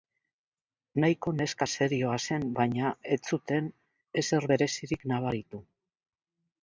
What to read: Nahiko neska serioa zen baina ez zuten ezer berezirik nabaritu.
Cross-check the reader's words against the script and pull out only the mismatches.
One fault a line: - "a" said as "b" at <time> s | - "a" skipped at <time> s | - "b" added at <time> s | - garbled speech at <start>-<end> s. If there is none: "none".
none